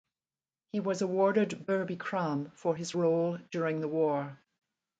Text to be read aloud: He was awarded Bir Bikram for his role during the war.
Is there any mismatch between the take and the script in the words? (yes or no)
no